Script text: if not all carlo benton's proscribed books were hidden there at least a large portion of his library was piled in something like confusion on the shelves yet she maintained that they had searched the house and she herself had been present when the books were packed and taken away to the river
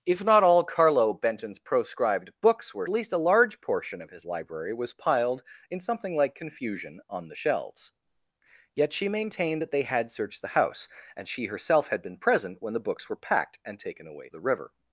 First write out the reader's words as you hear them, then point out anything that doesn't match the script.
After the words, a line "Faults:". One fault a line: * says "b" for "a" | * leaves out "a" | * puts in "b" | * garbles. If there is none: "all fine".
if not all carlo benton's proscribed books were least a large portion of his library was piled in something like confusion on the shelves yet she maintained that they had searched the house and she herself had been present when the books were packed and taken away the river
Faults:
* leaves out "hidden there at"
* leaves out "to"